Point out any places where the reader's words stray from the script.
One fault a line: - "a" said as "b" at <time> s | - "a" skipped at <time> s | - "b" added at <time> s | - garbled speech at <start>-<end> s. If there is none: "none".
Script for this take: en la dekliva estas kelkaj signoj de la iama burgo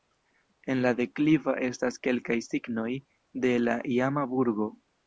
none